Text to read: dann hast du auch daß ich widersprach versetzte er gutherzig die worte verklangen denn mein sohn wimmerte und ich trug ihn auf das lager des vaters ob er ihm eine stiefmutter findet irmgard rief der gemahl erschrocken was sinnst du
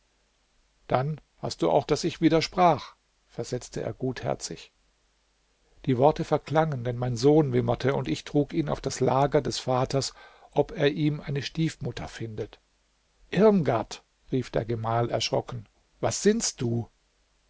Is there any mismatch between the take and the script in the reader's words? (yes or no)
no